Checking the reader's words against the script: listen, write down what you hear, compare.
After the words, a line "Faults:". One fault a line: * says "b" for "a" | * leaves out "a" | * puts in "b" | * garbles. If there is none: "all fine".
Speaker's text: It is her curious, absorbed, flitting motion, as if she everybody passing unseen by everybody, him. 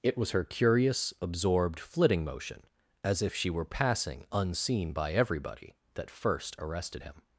It was her curious, absorbed, flitting motion, as if she were passing unseen by everybody, that first arrested him.
Faults:
* says "was" for "is"
* says "were" for "everybody"
* puts in "that first arrested"